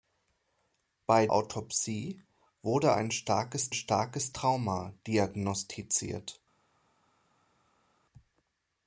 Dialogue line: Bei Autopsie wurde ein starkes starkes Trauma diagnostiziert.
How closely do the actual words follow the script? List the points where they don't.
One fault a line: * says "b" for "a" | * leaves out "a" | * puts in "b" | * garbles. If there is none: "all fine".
all fine